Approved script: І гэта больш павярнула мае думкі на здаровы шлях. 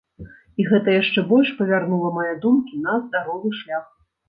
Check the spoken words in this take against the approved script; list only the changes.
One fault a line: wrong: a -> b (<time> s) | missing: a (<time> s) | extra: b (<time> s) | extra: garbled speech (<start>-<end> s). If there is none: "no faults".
extra: яшчэ (1.0 s)